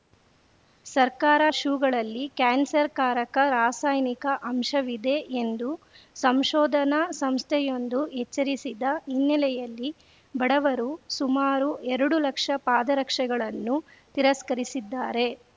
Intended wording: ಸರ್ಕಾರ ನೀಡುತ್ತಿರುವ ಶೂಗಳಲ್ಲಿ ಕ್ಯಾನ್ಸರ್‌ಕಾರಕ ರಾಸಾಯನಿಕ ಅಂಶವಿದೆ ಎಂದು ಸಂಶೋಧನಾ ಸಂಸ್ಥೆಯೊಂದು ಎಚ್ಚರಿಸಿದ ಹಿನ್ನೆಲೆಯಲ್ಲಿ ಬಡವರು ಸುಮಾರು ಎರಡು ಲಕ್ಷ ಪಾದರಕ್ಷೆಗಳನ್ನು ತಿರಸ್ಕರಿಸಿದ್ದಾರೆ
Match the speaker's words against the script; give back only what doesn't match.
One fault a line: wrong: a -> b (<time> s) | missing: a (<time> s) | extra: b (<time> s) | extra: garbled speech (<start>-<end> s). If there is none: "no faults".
missing: ನೀಡುತ್ತಿರುವ (1.4 s)